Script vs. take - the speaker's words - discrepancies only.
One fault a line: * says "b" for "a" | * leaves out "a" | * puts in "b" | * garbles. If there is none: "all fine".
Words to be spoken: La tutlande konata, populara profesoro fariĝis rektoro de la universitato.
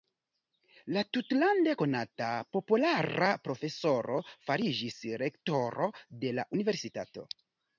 all fine